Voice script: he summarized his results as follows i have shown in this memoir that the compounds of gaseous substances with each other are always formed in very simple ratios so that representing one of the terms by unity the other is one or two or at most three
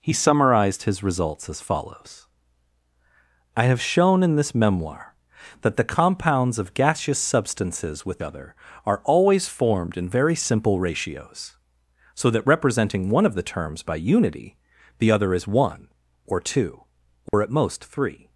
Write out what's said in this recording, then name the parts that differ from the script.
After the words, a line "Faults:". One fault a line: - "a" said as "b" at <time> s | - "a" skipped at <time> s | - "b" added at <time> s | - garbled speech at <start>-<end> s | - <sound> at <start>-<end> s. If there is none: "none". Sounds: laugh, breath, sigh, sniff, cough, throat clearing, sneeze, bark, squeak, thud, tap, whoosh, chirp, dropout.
he summarized his results as follows i have shown in this memoir that the compounds of gaseous substances with other are always formed in very simple ratios so that representing one of the terms by unity the other is one or two or at most three
Faults:
- "each" skipped at 8.2 s
- dropout at 17.3-17.3 s